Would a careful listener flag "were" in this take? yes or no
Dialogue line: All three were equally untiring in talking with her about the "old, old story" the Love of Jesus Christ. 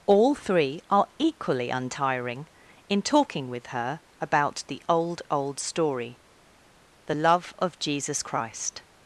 yes